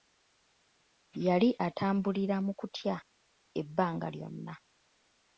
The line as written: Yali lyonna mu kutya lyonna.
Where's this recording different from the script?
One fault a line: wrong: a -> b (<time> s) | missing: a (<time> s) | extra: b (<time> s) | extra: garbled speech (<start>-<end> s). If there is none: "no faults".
wrong: lyonna -> atambulira (1.7 s)
extra: ebbanga (3.6 s)